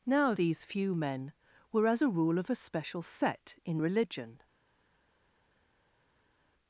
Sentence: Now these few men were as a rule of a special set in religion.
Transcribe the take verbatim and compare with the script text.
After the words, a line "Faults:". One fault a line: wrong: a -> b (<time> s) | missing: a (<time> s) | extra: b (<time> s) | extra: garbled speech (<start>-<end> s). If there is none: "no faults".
Now these few men were as a rule of a special set in religion.
Faults:
no faults